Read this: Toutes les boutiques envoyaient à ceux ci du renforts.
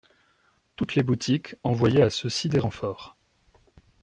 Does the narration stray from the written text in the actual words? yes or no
yes